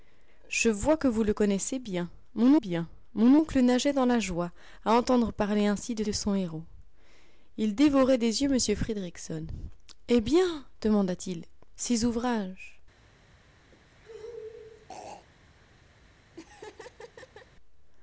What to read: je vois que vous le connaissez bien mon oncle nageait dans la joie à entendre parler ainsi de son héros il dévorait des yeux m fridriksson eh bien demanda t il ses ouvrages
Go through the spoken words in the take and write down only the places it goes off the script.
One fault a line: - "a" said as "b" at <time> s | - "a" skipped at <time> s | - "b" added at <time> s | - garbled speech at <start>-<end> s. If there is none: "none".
- "bien mon" added at 2.5 s
- "de" added at 6.0 s